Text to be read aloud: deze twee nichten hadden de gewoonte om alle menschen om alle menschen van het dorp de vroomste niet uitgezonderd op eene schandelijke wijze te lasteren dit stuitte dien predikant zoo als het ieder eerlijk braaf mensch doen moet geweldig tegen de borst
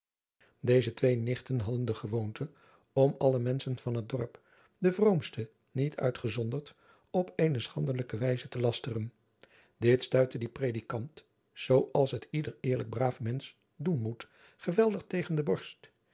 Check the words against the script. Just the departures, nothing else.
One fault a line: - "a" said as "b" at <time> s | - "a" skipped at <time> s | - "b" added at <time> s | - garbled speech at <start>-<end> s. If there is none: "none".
- "om alle menschen" skipped at 3.8 s